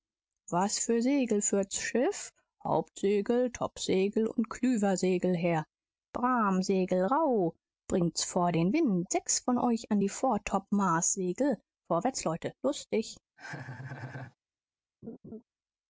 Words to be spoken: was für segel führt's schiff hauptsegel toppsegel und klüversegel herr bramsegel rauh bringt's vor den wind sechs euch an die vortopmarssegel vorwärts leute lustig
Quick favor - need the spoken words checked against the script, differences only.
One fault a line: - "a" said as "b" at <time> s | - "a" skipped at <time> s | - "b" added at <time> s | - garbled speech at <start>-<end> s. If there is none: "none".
- "von" added at 9.4 s